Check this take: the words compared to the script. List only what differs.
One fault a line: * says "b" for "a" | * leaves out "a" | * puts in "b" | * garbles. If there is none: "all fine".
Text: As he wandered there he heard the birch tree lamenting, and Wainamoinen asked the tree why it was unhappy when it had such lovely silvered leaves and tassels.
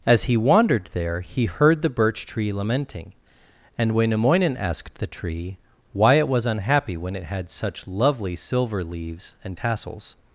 * says "silver" for "silvered"